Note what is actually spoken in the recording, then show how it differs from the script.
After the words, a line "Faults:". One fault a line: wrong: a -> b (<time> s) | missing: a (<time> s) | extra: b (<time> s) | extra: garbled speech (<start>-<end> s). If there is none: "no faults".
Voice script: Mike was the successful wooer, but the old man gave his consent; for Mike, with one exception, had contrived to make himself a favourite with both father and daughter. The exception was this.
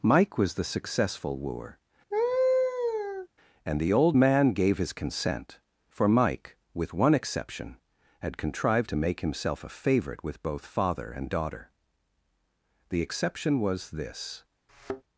Mike was the successful wooer, and the old man gave his consent; for Mike, with one exception, had contrived to make himself a favourite with both father and daughter. The exception was this.
Faults:
wrong: but -> and (3.6 s)